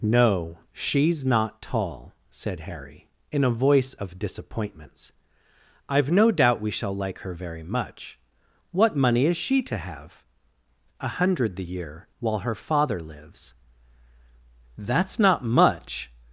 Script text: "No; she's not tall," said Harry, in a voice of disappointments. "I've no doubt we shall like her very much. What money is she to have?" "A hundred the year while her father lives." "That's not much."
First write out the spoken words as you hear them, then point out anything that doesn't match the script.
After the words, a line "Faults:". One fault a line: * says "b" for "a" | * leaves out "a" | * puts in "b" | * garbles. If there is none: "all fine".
"No; she's not tall," said Harry, in a voice of disappointments. "I've no doubt we shall like her very much. What money is she to have?" "A hundred the year while her father lives." "That's not much."
Faults:
all fine